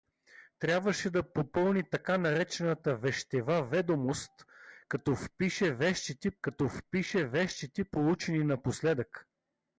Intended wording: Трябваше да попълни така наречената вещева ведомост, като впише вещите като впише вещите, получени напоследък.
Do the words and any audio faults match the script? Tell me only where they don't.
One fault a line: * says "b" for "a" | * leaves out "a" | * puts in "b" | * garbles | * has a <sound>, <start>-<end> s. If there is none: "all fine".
all fine